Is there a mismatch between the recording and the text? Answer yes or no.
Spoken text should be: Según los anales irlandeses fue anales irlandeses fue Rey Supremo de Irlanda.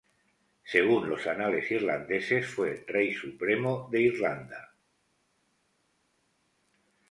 yes